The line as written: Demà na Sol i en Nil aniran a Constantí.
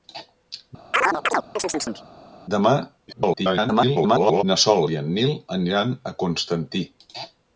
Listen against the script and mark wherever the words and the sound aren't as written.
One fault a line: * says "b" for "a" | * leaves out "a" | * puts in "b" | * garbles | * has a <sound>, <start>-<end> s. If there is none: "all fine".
* has a chirp, 0.9-2.0 s
* garbles